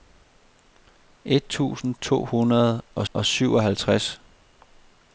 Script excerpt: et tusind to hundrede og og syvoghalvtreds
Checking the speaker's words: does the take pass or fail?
pass